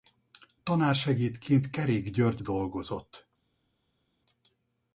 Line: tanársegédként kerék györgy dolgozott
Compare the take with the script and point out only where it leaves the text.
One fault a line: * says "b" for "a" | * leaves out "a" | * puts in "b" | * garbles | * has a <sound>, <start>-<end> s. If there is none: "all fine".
all fine